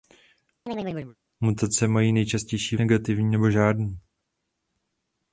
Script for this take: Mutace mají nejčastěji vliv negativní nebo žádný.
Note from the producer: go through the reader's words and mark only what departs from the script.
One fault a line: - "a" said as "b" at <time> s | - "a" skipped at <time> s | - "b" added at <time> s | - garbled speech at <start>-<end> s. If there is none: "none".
- "vliv" skipped at 2.8 s